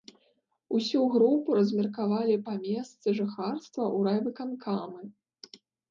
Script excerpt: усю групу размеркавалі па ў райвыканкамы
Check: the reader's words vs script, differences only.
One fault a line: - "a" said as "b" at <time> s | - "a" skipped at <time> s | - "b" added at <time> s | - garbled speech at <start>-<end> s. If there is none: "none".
- "месцы жыхарства" added at 2.7 s